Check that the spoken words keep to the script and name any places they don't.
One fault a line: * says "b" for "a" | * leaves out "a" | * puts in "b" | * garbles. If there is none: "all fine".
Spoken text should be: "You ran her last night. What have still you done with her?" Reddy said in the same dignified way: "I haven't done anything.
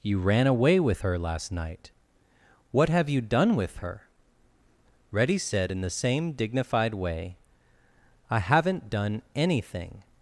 * puts in "away with"
* leaves out "still"